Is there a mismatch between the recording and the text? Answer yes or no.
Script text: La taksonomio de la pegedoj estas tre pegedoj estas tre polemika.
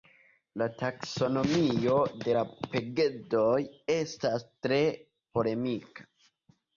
yes